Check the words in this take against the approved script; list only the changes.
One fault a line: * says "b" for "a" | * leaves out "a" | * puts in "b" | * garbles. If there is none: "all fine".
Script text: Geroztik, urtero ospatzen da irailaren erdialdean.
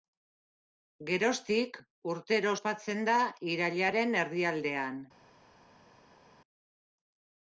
all fine